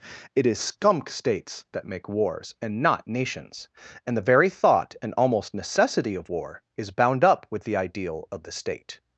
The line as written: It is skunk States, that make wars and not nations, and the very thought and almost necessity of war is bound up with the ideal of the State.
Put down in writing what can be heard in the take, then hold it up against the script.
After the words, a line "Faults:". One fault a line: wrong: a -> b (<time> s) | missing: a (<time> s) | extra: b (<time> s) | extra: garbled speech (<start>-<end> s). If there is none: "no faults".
It is skunk States, that make wars and not nations, and the very thought and almost necessity of war is bound up with the ideal of the State.
Faults:
no faults